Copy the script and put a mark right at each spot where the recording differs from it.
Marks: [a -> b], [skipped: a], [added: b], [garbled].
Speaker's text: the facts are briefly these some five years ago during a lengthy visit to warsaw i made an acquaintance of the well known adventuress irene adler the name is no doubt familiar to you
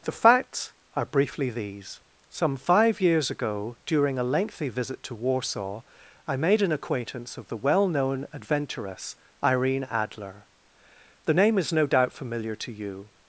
the facts are briefly these some five years ago during a lengthy visit to warsaw i made an acquaintance of the well known adventuress irene adler the name is no doubt familiar to you